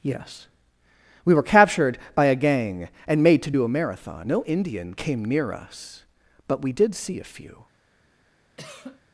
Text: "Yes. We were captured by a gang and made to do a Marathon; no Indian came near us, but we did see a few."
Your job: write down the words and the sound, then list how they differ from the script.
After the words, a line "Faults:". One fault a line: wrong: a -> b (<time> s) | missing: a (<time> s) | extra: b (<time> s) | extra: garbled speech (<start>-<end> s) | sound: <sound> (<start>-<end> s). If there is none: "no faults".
"Yes. We were captured by a gang and made to do a Marathon; no Indian came near us, but we did see a few."
Faults:
sound: cough (8.6-9.0 s)